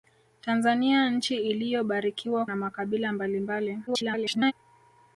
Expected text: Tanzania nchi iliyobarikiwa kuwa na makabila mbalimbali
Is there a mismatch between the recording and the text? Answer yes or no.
yes